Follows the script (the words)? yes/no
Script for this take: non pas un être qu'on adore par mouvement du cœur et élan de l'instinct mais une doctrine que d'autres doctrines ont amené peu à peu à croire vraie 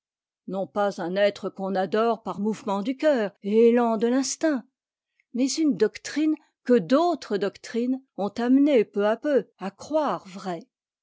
yes